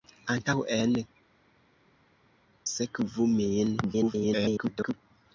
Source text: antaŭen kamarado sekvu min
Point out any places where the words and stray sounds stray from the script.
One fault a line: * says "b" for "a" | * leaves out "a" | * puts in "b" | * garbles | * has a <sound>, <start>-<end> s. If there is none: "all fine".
* leaves out "kamarado"
* garbles